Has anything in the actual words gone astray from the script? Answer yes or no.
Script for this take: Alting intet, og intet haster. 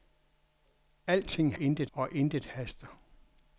no